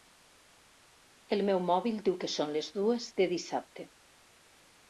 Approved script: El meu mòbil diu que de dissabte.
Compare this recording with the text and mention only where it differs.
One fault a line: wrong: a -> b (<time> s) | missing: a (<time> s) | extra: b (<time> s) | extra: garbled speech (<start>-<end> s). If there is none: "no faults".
extra: són les dues (2.4 s)